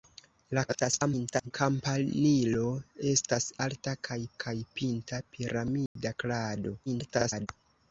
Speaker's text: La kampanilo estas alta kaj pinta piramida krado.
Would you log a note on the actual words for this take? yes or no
yes